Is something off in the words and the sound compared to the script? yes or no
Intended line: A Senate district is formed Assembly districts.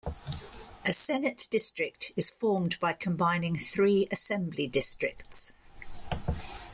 yes